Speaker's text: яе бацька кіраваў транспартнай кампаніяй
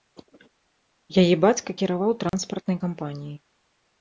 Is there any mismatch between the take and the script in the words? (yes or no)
no